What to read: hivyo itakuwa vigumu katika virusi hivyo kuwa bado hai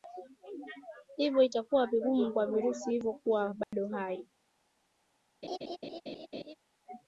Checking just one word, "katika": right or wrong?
wrong